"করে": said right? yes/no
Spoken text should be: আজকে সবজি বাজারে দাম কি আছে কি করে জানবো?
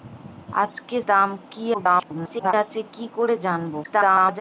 yes